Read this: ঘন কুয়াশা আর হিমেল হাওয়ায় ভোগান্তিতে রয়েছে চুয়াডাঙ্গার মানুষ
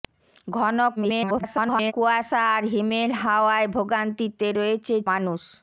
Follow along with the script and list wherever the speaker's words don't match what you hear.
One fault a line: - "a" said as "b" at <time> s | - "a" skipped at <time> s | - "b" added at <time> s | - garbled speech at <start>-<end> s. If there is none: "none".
- garbled speech at 1.0-1.9 s
- "চুয়াডাঙ্গার" skipped at 4.9 s